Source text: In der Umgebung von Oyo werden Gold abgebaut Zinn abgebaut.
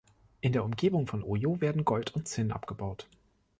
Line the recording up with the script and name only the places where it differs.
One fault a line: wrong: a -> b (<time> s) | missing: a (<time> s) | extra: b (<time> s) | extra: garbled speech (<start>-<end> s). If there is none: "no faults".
wrong: abgebaut -> und (2.1 s)